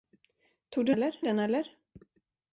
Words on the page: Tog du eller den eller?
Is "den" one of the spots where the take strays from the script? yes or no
no